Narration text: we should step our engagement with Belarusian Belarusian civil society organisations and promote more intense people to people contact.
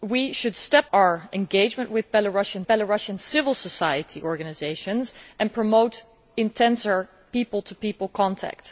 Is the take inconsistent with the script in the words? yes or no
no